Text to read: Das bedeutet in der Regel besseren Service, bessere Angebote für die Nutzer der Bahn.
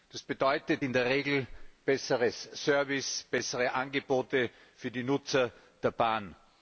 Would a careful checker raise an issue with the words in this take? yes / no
no